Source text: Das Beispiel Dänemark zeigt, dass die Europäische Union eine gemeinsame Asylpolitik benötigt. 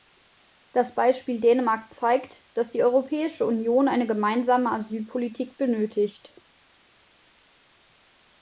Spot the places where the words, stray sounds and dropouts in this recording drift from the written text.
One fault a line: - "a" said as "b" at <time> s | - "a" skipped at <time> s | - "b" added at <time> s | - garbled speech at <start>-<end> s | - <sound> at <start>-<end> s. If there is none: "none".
none